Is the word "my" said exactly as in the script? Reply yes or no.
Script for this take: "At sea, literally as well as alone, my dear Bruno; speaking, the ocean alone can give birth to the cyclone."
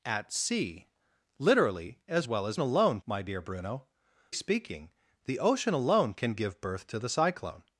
yes